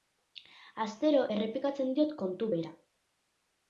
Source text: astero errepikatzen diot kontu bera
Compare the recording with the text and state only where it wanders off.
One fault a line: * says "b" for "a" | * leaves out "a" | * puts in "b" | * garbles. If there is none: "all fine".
all fine